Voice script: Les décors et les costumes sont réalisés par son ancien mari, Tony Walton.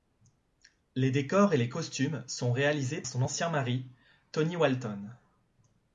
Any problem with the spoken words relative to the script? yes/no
yes